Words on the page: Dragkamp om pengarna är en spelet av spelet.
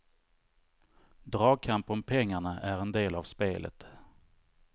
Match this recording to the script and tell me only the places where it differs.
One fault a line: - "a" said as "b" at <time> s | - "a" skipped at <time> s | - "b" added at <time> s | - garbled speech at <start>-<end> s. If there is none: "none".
- "spelet" said as "del" at 2.9 s